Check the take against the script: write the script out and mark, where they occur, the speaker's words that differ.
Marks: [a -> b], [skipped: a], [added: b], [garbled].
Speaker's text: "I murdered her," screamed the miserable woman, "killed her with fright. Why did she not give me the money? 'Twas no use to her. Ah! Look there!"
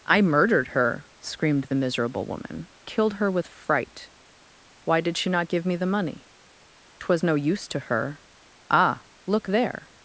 "I murdered her," screamed the miserable woman, "killed her with fright. Why did she not give me the money? 'Twas no use to her. Ah! Look there!"